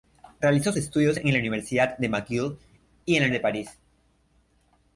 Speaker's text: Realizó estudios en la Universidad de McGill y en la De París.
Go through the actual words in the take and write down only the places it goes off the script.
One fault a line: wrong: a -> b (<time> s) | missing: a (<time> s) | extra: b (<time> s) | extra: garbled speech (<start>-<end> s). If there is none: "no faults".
no faults